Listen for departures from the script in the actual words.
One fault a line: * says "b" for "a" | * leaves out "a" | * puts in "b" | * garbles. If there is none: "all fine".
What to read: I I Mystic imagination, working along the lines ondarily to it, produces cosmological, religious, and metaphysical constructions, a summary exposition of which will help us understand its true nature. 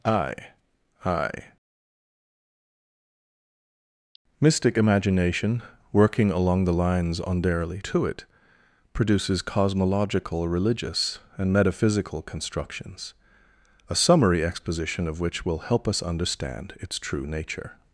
all fine